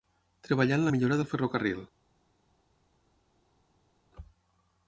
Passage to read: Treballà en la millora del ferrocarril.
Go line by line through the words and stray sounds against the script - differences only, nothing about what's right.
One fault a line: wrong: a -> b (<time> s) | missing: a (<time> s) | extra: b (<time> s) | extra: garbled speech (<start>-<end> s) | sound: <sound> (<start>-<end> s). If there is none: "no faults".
no faults